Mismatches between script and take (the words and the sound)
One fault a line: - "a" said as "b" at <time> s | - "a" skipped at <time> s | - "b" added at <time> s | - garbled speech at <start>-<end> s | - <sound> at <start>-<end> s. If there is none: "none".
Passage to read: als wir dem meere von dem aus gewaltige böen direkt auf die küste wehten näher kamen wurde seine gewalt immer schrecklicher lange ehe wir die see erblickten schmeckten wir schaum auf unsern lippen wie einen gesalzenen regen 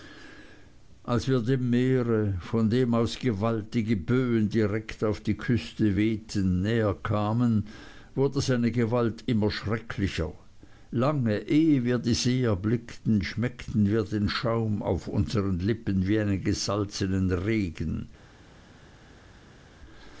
- "den" added at 14.1 s